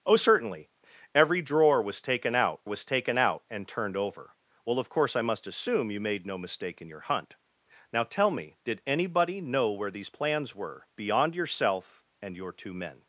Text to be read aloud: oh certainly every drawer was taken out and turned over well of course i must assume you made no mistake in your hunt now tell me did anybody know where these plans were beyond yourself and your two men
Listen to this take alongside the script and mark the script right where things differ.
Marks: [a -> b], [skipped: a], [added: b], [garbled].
oh certainly every drawer was taken out [added: was taken out] and turned over well of course i must assume you made no mistake in your hunt now tell me did anybody know where these plans were beyond yourself and your two men